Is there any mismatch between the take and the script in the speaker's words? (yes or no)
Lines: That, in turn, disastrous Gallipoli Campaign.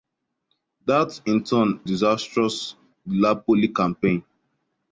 no